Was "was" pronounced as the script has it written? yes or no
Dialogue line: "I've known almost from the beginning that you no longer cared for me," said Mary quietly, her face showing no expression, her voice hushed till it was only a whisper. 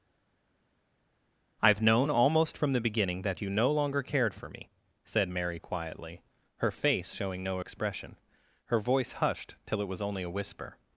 yes